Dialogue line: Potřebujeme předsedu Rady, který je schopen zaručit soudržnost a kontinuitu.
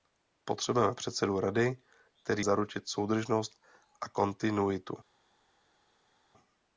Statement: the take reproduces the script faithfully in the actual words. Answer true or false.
false